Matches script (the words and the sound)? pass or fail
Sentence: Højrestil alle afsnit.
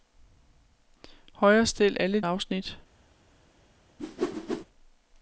fail